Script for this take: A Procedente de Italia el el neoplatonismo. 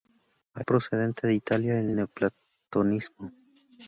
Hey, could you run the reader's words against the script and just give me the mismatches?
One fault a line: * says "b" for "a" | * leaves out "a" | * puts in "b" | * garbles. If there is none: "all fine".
all fine